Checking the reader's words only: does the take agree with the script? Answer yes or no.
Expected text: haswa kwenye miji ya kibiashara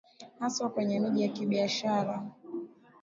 yes